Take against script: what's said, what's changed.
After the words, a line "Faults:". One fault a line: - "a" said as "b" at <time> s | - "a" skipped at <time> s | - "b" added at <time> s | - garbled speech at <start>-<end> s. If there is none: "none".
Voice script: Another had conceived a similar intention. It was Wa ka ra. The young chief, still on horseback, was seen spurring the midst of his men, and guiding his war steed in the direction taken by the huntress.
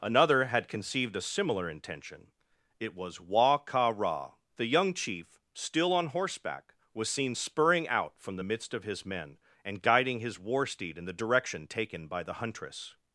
Another had conceived a similar intention. It was Wa ka ra. The young chief, still on horseback, was seen spurring out from the midst of his men, and guiding his war steed in the direction taken by the huntress.
Faults:
- "out from" added at 7.9 s